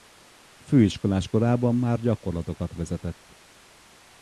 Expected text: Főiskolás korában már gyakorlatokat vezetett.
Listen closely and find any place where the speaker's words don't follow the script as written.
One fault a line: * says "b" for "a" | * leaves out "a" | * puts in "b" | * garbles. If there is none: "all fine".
all fine